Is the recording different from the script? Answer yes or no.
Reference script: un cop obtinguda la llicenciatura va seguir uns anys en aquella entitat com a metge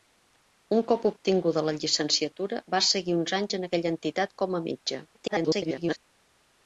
yes